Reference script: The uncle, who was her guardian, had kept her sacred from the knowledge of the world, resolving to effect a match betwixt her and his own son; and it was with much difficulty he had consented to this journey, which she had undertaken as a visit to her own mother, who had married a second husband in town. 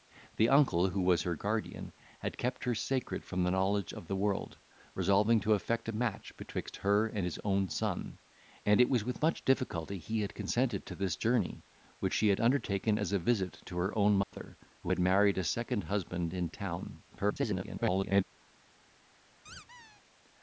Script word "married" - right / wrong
right